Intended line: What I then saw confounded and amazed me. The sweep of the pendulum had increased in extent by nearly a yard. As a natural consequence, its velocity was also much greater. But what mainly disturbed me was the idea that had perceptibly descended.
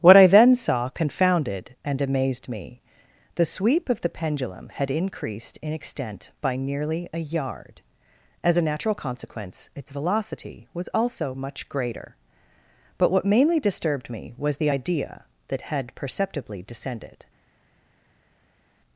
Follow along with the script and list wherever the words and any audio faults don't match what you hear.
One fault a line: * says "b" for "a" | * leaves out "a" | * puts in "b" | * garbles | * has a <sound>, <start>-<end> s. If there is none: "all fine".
all fine